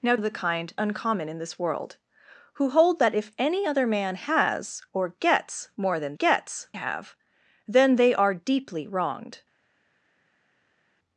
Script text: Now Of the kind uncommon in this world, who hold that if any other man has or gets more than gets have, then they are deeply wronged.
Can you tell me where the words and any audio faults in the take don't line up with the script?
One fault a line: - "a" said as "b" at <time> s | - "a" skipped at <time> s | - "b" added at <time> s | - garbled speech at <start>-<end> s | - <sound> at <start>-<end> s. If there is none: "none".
none